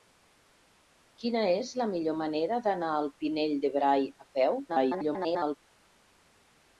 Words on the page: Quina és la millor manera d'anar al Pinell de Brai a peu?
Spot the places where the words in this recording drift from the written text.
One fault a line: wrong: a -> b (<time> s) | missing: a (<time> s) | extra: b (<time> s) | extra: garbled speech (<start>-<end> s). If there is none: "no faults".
extra: garbled speech (4.7-5.6 s)